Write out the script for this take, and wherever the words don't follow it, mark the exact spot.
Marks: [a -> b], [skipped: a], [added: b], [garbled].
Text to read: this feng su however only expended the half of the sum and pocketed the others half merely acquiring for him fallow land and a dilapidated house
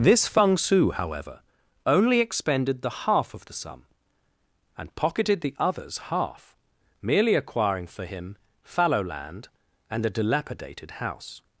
this feng su however only expended the half of the sum and pocketed the others half merely acquiring for him fallow land and a dilapidated house